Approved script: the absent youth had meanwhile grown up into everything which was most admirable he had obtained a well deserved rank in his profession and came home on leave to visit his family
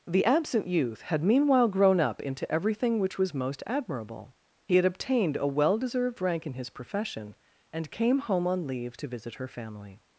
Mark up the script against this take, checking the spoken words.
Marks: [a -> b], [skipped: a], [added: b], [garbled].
the absent youth had meanwhile grown up into everything which was most admirable he had obtained a well deserved rank in his profession and came home on leave to visit [his -> her] family